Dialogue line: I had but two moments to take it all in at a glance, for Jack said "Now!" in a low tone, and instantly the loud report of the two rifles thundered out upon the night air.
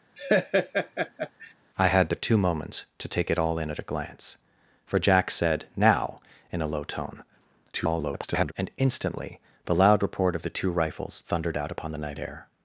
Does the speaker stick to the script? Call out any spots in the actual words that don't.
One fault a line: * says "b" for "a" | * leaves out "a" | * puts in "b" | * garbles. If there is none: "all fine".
* garbles